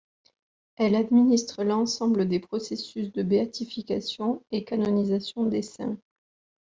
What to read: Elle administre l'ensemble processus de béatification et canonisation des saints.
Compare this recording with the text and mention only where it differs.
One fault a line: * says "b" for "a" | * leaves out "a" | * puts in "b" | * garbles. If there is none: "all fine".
* puts in "des"